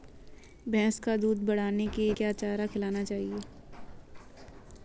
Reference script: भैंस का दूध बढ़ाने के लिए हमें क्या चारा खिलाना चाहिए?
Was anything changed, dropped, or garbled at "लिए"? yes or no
yes